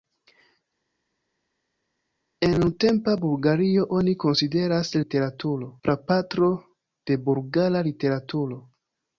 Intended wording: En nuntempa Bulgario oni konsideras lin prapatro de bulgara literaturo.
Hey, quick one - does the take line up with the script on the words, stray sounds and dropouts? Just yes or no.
no